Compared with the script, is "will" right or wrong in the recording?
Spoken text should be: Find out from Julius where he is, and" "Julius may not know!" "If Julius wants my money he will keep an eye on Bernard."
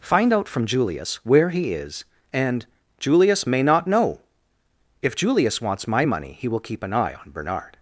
right